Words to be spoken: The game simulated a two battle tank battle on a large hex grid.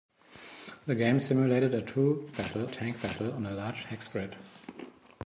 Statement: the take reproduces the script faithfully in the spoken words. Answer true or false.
true